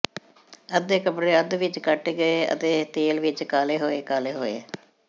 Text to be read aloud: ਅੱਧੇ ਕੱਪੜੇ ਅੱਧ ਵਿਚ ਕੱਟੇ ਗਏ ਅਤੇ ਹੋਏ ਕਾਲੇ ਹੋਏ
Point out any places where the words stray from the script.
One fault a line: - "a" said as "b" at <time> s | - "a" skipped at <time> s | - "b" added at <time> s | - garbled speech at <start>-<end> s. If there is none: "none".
- "ਤੇਲ ਵਿਚ ਕਾਲੇ" added at 2.9 s